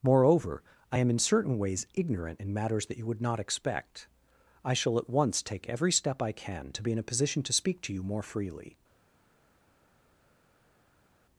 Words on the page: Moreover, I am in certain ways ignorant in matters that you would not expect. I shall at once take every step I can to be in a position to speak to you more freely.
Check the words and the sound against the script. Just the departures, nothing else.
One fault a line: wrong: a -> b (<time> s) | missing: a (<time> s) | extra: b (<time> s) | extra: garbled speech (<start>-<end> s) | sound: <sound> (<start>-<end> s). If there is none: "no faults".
no faults